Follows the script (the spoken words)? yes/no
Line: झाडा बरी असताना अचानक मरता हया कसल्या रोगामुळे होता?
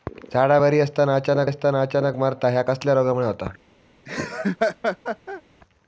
no